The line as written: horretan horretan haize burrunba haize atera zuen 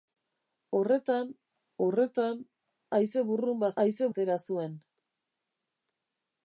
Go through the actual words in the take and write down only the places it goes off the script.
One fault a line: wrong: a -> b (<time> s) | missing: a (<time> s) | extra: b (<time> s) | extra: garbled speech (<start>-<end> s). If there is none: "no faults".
no faults